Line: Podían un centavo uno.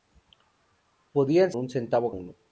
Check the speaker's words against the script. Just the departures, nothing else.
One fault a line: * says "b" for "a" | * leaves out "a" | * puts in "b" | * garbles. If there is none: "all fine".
all fine